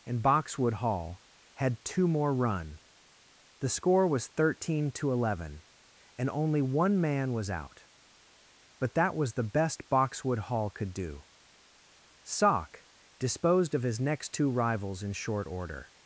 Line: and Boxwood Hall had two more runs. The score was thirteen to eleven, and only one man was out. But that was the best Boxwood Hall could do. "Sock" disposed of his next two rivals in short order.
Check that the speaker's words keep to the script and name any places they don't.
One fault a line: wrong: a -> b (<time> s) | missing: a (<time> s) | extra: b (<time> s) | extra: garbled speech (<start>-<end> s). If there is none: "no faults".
wrong: runs -> run (2.3 s)